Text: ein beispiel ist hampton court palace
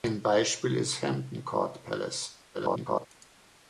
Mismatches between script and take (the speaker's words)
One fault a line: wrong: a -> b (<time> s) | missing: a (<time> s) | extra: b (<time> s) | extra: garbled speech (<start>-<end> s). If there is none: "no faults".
extra: garbled speech (2.5-3.1 s)